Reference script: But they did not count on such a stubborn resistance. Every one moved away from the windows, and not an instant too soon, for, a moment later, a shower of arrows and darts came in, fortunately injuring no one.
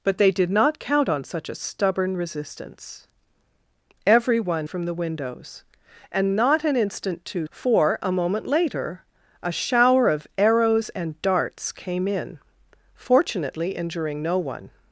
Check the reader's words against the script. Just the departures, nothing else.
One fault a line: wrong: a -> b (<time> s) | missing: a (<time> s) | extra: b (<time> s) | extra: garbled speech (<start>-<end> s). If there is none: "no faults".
missing: moved away (4.7 s)
missing: soon (7.5 s)